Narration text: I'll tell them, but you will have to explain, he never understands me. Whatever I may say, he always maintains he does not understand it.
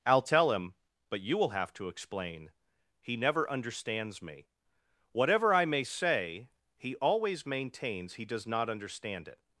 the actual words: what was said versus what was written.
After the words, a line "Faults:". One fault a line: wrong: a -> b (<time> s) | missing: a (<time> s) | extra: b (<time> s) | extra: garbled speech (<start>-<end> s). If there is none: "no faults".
I'll tell him, but you will have to explain, he never understands me. Whatever I may say, he always maintains he does not understand it.
Faults:
wrong: them -> him (0.5 s)